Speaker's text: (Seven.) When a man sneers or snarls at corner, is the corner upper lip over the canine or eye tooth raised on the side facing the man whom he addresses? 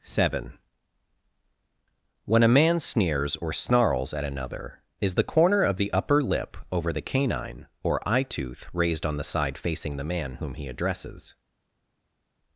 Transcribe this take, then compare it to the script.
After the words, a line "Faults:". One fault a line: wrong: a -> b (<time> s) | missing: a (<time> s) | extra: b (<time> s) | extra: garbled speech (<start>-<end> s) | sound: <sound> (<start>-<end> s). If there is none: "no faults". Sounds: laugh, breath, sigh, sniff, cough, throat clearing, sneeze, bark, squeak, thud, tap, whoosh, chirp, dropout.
(Seven.) When a man sneers or snarls at another, is the corner of the upper lip over the canine or eye tooth raised on the side facing the man whom he addresses?
Faults:
wrong: corner -> another (4.2 s)
extra: of the (5.6 s)